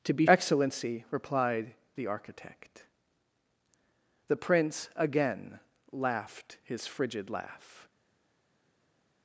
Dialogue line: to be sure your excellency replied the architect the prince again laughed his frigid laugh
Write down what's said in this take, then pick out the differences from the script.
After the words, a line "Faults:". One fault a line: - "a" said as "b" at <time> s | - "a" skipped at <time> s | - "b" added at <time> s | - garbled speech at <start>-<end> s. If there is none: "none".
to be excellency replied the architect the prince again laughed his frigid laugh
Faults:
- "sure your" skipped at 0.2 s